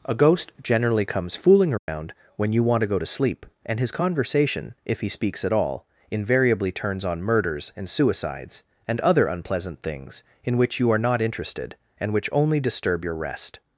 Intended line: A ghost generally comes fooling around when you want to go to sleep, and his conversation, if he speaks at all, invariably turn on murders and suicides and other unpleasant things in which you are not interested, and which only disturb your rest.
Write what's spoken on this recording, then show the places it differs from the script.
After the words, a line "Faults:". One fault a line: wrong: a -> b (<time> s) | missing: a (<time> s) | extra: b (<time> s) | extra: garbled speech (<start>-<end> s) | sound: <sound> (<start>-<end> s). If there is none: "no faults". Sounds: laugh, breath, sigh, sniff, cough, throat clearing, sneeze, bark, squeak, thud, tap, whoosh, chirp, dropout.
A ghost generally comes fooling around when you want to go to sleep, and his conversation, if he speaks at all, invariably turns on murders and suicides and other unpleasant things in which you are not interested, and which only disturb your rest.
Faults:
sound: dropout (1.8-1.9 s)
wrong: turn -> turns (6.7 s)